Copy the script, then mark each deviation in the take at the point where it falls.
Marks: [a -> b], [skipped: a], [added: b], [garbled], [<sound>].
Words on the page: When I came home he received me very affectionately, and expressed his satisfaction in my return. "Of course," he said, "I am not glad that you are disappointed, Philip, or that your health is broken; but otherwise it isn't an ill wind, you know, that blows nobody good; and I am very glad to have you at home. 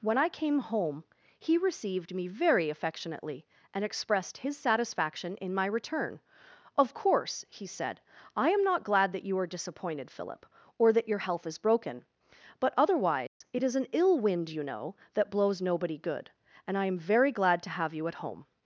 When I came home he received me very affectionately, and expressed his satisfaction in my return. "Of course," he said, "I am not glad that you are disappointed, Philip, or that your health is broken; but otherwise [dropout] it [isn't -> is] an ill wind, you know, that blows nobody good; and I am very glad to have you at home.